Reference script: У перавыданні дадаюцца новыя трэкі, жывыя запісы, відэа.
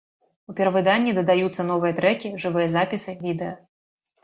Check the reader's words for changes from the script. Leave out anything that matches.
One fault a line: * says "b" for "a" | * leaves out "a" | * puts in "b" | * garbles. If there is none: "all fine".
all fine